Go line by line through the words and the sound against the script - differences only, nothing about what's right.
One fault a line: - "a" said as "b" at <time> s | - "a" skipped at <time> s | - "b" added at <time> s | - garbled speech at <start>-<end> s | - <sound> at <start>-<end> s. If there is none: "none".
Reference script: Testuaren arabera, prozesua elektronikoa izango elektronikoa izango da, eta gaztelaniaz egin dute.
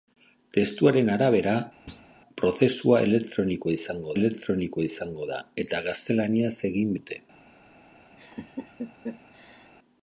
- thud at 1.9-2.1 s
- laugh at 8.2-9.7 s